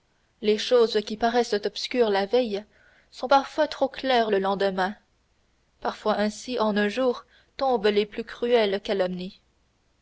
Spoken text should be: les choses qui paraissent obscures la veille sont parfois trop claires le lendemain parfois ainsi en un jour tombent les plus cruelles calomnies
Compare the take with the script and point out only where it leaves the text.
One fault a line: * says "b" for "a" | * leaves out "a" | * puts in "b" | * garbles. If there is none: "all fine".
all fine